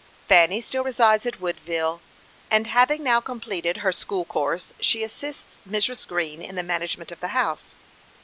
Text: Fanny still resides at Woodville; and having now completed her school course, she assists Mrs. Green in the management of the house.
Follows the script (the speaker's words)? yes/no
yes